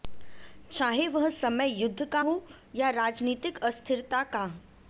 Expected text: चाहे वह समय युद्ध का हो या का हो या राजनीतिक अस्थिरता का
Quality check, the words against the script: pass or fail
fail